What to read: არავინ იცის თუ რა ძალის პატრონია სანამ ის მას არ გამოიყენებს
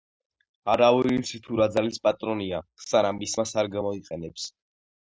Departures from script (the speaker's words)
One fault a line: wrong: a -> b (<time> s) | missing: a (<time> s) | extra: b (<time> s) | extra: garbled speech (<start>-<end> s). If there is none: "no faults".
no faults